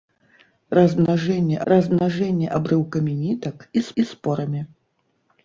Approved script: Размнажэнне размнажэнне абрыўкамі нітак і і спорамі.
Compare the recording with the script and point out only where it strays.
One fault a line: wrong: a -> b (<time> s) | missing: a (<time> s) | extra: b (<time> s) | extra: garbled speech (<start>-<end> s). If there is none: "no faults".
no faults